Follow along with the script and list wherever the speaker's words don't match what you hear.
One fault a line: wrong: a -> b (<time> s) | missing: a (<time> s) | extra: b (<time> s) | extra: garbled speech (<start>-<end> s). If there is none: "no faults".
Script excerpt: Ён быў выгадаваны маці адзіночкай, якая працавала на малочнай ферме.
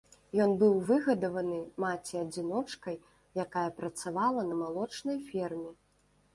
no faults